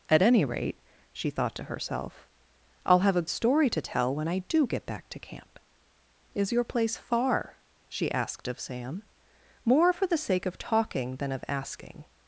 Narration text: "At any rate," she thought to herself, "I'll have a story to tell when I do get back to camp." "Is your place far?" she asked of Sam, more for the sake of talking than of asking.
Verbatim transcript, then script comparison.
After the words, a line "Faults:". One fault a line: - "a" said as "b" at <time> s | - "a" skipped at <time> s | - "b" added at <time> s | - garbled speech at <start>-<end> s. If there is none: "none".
"At any rate," she thought to herself, "I'll have a story to tell when I do get back to camp." "Is your place far?" she asked of Sam, more for the sake of talking than of asking.
Faults:
none